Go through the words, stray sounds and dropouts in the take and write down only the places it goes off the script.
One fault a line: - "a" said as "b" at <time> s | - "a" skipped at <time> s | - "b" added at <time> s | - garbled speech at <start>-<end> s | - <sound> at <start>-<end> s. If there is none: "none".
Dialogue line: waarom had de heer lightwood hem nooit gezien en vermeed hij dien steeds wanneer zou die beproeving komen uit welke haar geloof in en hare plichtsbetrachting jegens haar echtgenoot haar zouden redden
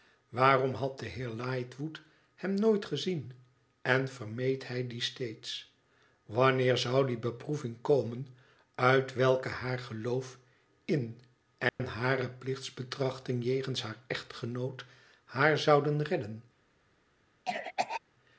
- dropout at 11.7-11.8 s
- cough at 17.5-18.0 s